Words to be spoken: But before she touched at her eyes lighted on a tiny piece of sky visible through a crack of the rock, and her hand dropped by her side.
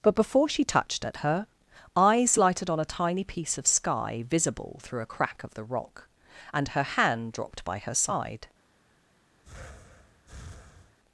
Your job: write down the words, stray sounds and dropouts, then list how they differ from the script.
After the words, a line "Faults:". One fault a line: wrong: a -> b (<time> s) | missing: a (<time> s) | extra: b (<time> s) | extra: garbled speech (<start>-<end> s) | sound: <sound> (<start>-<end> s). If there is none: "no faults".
But before she touched at her eyes lighted on a tiny piece of sky visible through a crack of the rock, and her hand dropped by her side.
Faults:
sound: breath (9.4-11.0 s)